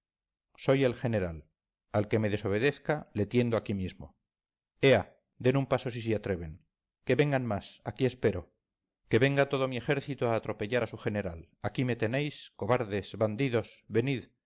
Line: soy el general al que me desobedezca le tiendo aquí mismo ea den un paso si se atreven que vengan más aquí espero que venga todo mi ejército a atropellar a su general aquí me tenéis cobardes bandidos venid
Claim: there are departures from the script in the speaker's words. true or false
false